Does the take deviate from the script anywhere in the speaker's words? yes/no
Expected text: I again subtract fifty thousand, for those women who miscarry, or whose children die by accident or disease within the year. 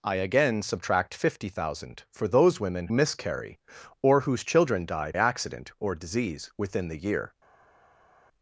yes